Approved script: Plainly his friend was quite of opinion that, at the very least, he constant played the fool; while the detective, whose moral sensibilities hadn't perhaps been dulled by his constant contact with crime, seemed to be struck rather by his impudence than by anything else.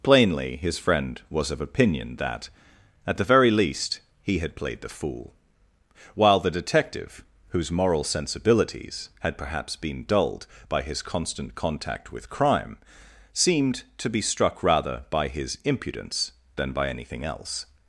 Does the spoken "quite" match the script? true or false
false